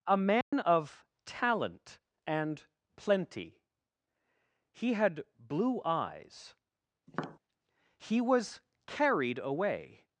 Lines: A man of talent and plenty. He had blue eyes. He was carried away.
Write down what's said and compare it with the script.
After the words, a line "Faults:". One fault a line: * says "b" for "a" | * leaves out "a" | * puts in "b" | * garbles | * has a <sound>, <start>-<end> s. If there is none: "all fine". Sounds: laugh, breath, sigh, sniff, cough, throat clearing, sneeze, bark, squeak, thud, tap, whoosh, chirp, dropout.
A man of talent and plenty. He had blue eyes. He was carried away.
Faults:
* has a dropout, 0.4-0.5 s
* has a tap, 7.1-7.4 s